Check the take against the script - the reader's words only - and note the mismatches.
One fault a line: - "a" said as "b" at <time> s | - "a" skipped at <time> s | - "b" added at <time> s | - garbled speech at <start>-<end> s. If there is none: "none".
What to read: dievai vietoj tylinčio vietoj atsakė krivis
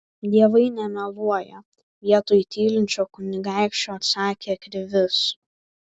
- "nemeluoja" added at 0.8 s
- "vietoj" said as "kunigaikščio" at 3.2 s